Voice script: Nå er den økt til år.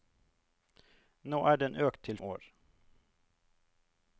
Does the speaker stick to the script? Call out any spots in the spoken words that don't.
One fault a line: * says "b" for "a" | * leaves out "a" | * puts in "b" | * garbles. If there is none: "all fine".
all fine